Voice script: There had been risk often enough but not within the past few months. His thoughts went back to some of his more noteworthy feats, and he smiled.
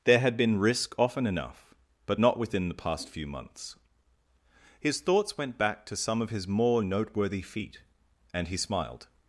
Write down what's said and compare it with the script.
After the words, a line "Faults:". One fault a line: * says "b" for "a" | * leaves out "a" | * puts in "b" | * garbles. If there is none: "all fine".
There had been risk often enough but not within the past few months. His thoughts went back to some of his more noteworthy feat, and he smiled.
Faults:
* says "feat" for "feats"